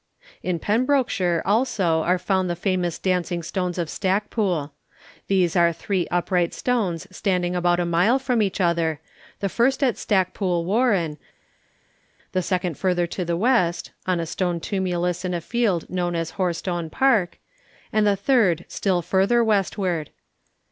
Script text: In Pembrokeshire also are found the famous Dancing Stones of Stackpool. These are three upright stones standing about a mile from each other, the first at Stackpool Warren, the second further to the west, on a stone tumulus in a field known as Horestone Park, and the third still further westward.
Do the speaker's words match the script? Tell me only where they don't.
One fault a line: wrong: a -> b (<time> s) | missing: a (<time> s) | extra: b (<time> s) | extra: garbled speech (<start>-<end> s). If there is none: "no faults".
no faults